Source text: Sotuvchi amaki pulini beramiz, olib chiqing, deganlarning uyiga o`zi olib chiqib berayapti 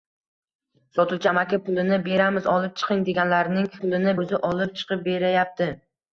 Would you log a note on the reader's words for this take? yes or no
yes